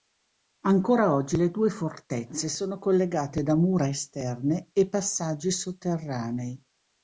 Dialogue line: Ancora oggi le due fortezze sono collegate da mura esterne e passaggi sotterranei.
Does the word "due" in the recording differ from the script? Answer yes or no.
no